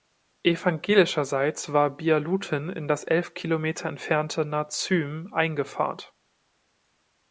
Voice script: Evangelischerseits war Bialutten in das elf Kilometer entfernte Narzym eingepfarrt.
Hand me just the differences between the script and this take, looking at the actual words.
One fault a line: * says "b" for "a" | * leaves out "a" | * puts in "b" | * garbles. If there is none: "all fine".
all fine